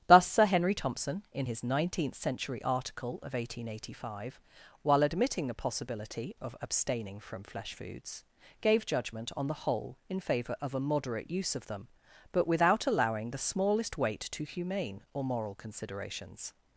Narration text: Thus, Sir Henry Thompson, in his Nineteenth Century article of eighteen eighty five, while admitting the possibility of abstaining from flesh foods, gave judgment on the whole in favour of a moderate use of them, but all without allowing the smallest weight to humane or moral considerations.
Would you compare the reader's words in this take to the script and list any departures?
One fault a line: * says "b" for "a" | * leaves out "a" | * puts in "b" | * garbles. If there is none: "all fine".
* leaves out "all"